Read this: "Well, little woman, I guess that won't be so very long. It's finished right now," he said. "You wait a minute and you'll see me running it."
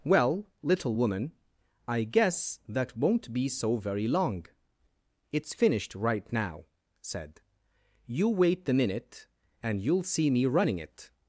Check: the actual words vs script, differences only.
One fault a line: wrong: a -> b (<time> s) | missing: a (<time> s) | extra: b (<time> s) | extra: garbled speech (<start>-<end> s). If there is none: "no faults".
missing: he (6.6 s)
wrong: a -> the (8.6 s)